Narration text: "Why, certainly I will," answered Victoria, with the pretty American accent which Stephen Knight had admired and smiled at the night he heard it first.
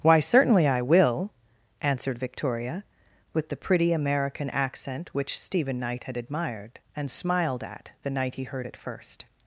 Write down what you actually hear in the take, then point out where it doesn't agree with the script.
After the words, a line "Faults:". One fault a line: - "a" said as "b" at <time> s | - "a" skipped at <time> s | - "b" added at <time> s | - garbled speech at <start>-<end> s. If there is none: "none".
"Why, certainly I will," answered Victoria, with the pretty American accent which Stephen Knight had admired and smiled at the night he heard it first.
Faults:
none